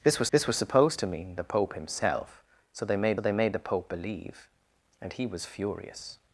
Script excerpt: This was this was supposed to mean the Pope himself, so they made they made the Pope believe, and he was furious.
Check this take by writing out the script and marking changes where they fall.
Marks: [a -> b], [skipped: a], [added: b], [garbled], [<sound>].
This was this was supposed to mean the Pope himself, so they made they made the Pope believe, and he was furious.